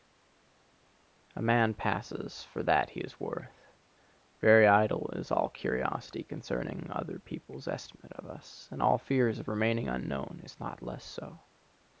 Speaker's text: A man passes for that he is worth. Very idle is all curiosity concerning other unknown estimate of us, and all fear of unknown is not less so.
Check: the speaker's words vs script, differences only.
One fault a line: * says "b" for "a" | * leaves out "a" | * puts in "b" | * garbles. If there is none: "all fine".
* says "people's" for "unknown"
* puts in "remaining"